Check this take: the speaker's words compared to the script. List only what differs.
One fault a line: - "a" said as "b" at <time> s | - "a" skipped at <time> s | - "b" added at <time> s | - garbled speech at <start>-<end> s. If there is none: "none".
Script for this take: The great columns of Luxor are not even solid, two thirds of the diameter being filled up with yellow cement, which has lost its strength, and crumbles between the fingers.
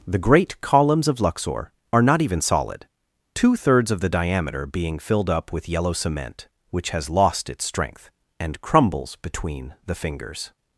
none